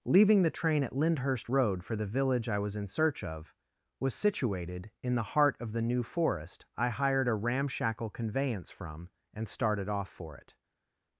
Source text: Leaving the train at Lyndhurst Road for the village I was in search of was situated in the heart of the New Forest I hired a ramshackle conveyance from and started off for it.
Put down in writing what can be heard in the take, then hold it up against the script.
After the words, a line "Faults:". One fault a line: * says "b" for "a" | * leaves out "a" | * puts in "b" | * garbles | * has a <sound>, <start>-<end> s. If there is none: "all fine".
Leaving the train at Lyndhurst Road for the village I was in search of was situated in the heart of the New Forest I hired a ramshackle conveyance from and started off for it.
Faults:
all fine